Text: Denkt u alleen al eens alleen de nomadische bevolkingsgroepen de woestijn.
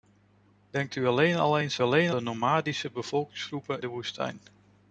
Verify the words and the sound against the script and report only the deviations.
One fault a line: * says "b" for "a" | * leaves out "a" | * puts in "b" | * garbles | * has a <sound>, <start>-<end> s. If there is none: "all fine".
all fine